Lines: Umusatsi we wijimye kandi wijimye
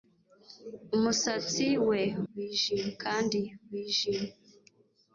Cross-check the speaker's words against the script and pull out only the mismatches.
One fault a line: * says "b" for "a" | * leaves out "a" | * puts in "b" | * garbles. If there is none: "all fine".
all fine